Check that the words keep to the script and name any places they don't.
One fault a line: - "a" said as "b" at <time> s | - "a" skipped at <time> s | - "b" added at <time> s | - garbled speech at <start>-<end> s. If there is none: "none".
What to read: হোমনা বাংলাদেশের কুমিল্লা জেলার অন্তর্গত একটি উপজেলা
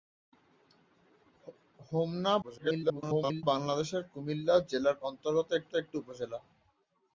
- garbled speech at 2.4-3.4 s
- "একটি" added at 5.7 s